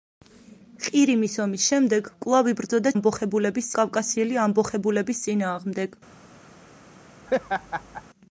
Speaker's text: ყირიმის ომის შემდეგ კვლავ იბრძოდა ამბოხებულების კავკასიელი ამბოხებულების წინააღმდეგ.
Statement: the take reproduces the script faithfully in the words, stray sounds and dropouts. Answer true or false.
false